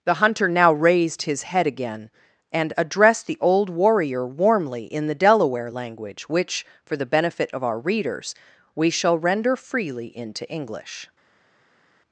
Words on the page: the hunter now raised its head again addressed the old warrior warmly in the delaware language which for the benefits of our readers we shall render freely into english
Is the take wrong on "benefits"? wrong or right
wrong